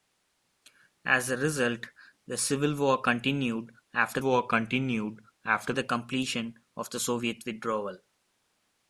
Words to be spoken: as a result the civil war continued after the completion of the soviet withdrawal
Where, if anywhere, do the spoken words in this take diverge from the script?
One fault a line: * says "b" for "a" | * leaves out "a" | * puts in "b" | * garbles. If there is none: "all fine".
* puts in "war continued after"